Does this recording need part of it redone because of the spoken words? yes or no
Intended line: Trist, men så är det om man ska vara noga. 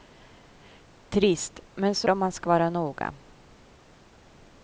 yes